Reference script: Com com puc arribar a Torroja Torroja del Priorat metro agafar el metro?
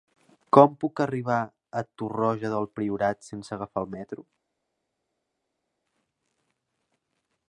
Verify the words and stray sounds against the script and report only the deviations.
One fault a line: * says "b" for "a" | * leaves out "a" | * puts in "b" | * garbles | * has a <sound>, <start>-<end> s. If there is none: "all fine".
* leaves out "com"
* leaves out "Torroja"
* says "sense" for "metro"